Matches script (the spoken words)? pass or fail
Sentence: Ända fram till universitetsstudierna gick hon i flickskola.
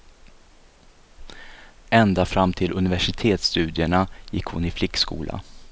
pass